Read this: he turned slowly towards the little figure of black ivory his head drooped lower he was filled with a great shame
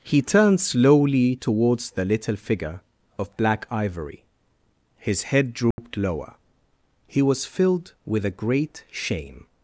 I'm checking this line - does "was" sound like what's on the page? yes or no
yes